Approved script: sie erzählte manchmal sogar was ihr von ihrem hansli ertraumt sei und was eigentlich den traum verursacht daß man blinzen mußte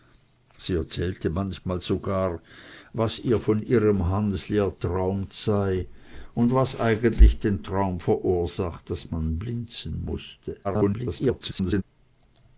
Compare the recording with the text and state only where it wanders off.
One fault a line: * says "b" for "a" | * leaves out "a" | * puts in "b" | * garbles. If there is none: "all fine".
* garbles